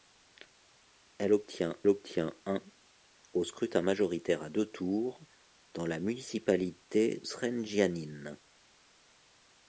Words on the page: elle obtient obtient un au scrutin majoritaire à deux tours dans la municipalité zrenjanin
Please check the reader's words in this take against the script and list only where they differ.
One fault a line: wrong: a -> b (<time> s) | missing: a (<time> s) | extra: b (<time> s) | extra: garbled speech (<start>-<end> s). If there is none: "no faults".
no faults